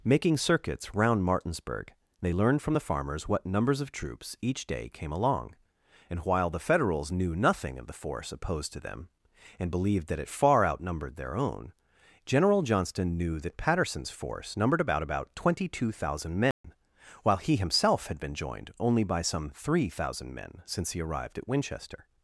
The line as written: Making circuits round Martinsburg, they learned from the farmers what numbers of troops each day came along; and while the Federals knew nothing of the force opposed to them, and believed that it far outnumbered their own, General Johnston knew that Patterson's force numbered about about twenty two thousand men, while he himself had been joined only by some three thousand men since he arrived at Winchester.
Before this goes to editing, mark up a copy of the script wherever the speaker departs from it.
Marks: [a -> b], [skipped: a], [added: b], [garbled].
Making circuits round Martinsburg, they learned from the farmers what numbers of troops each day came along; and while the Federals knew nothing of the force opposed to them, and believed that it far outnumbered their own, General Johnston knew that Patterson's force numbered about about twenty two thousand men, while he himself had been joined only by some three thousand men since he arrived at Winchester.